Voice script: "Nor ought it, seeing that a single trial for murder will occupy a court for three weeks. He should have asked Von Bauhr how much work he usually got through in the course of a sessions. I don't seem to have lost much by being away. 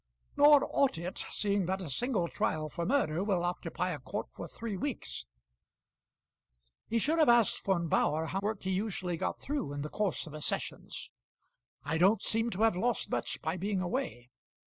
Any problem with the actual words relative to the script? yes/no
yes